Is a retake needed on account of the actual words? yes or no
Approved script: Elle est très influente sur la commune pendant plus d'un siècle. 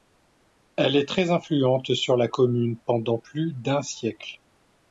no